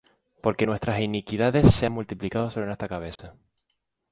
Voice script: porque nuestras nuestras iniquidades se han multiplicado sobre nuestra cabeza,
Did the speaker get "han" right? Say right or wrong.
right